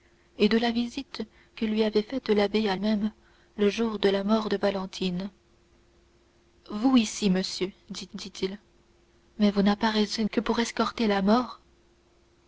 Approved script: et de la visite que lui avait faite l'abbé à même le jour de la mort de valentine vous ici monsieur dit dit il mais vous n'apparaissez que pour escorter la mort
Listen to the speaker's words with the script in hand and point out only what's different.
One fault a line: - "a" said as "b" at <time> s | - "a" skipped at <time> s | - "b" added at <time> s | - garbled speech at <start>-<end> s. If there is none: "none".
none